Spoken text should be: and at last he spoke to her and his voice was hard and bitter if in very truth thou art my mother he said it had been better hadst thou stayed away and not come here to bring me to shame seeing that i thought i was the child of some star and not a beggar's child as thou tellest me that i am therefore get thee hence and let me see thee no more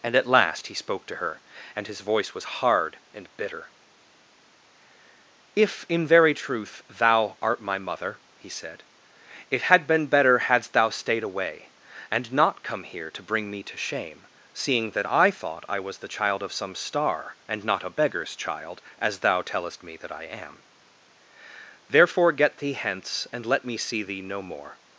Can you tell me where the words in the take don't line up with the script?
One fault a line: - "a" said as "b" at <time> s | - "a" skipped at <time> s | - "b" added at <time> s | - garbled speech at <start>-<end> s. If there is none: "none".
none